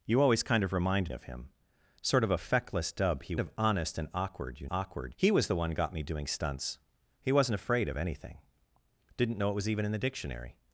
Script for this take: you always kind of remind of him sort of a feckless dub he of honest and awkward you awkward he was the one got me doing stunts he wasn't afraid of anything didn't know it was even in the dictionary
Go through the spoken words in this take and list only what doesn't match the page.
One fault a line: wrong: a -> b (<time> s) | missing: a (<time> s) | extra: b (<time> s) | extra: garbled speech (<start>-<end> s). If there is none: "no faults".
no faults